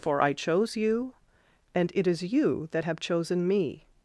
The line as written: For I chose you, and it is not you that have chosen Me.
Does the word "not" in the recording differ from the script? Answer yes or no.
yes